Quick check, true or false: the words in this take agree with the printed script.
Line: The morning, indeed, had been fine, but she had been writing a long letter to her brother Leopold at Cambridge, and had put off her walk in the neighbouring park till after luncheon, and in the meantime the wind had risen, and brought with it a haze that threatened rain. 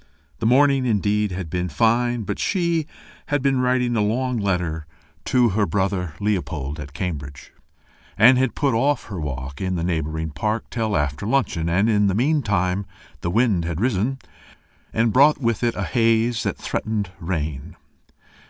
true